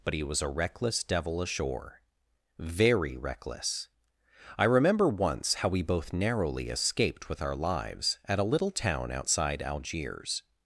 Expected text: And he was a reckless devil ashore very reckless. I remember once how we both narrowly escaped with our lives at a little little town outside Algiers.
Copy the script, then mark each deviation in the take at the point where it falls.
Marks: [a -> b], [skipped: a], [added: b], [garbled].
[And -> But] he was a reckless devil ashore very reckless. I remember once how we both narrowly escaped with our lives at a little [skipped: little] town outside Algiers.